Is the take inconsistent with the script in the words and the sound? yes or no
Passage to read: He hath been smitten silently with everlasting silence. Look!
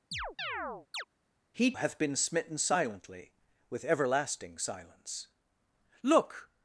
yes